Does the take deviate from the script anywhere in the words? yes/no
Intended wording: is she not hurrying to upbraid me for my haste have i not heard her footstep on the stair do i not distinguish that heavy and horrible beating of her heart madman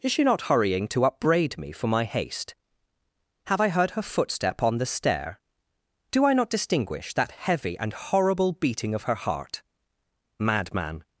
yes